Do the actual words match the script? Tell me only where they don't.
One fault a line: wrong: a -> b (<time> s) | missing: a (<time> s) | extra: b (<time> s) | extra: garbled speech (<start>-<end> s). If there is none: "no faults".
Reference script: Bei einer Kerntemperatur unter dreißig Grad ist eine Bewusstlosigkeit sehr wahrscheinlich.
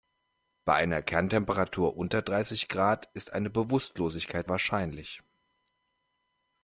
missing: sehr (4.5 s)